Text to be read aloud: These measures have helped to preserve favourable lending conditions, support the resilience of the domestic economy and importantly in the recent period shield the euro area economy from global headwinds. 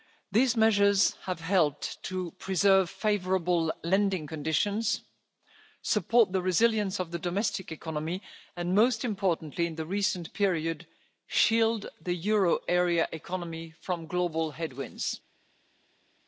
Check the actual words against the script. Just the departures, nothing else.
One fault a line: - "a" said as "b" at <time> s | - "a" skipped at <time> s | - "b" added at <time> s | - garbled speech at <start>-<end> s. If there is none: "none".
- "most" added at 8.7 s